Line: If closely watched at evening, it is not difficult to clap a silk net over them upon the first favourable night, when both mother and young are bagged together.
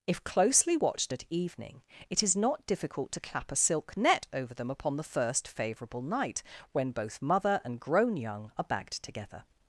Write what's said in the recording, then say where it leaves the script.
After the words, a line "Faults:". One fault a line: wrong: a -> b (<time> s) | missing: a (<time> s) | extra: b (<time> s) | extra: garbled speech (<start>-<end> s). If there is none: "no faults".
If closely watched at evening, it is not difficult to clap a silk net over them upon the first favourable night, when both mother and grown young are bagged together.
Faults:
extra: grown (7.8 s)